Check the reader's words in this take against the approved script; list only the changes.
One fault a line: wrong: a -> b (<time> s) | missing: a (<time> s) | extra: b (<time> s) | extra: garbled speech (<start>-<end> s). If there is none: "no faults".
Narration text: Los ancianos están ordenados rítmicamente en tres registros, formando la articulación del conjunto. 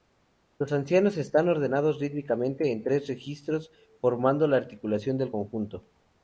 no faults